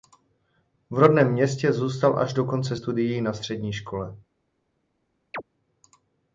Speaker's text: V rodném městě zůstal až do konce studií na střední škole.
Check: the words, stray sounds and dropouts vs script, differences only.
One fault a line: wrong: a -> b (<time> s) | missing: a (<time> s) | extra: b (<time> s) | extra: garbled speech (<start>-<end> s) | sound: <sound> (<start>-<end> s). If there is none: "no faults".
sound: chirp (5.3-5.4 s)